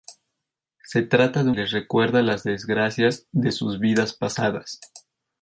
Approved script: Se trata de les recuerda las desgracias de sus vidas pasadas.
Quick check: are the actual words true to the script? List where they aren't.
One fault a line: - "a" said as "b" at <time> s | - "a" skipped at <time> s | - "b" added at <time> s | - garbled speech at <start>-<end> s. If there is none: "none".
none